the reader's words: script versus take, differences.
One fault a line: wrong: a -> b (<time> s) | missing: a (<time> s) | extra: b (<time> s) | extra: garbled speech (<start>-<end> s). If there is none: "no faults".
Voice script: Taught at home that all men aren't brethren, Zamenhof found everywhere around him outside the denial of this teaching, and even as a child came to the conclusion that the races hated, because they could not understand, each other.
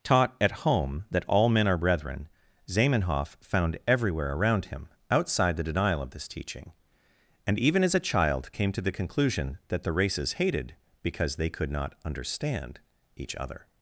wrong: aren't -> are (1.7 s)